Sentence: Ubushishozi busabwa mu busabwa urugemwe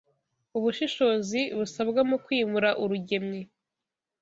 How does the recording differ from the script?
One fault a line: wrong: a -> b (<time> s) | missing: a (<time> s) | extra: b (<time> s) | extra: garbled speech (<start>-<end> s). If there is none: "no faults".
wrong: busabwa -> kwimura (2.2 s)